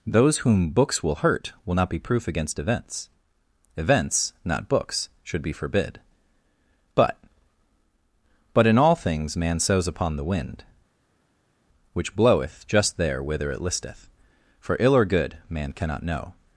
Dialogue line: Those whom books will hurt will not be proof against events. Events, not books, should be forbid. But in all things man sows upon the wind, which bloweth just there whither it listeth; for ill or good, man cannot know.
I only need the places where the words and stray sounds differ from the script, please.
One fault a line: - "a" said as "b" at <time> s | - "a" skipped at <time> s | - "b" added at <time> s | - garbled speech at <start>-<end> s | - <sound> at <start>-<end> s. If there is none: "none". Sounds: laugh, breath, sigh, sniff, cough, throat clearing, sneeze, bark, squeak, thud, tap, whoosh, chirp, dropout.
- "But" added at 8.5 s